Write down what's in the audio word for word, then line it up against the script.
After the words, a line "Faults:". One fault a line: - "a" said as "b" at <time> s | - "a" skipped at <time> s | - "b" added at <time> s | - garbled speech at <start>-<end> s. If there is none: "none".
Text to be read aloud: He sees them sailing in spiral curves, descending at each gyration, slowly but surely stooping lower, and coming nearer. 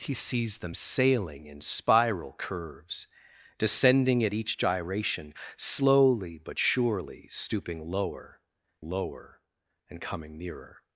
He sees them sailing in spiral curves, descending at each gyration, slowly but surely stooping lower lower, and coming nearer.
Faults:
- "lower" added at 8.8 s